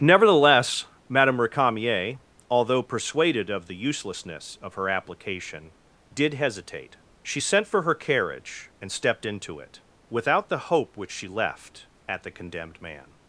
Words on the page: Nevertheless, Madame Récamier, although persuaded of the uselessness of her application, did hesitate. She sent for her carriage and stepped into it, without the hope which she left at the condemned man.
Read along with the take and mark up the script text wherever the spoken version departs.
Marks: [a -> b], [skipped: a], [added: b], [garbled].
Nevertheless, Madame Récamier, although persuaded of the uselessness of her application, did hesitate. She sent for her carriage and stepped into it, without the hope which she left at the condemned man.